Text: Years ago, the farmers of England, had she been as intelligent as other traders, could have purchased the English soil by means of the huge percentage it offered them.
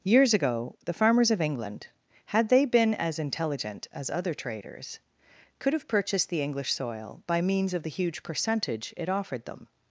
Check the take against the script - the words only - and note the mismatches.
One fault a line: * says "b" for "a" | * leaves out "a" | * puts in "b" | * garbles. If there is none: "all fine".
* says "they" for "she"